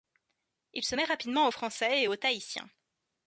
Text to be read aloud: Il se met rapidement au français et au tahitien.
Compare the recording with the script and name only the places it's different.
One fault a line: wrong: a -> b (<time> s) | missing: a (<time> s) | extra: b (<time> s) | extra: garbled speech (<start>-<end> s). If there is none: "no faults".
no faults